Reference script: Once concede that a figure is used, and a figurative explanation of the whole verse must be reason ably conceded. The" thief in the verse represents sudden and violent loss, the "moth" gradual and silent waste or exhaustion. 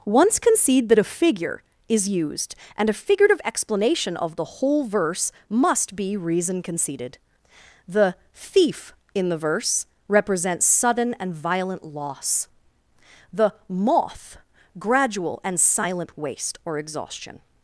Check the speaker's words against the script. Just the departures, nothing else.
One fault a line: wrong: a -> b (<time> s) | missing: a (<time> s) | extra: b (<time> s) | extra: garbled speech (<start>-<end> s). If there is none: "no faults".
missing: ably (6.6 s)